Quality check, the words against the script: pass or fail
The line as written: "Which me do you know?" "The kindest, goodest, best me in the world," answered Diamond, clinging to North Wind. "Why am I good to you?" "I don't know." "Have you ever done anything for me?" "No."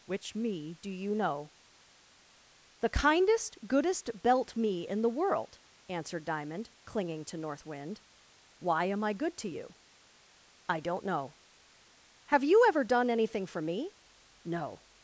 fail